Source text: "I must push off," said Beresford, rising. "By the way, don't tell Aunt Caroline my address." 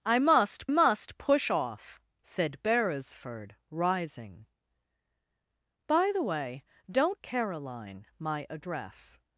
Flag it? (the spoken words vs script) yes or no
yes